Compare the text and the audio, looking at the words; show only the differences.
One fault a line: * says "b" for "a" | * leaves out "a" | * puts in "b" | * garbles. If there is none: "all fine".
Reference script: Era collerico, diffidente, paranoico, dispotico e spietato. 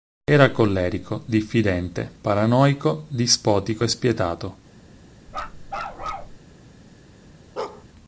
all fine